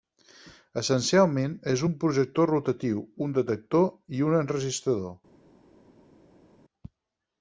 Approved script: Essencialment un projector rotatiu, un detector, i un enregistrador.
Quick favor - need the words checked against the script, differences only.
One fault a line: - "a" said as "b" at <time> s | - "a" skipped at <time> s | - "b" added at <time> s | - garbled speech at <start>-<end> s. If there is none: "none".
- "és" added at 1.7 s